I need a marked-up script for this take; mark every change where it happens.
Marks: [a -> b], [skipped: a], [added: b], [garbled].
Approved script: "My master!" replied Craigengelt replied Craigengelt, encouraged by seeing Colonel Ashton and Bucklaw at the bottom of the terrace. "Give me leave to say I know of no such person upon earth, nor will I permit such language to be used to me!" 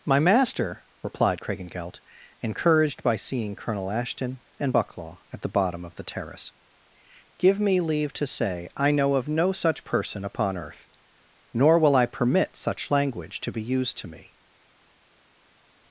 "My master!" replied Craigengelt [skipped: replied Craigengelt,] encouraged by seeing Colonel Ashton and Bucklaw at the bottom of the terrace. "Give me leave to say I know of no such person upon earth, nor will I permit such language to be used to me!"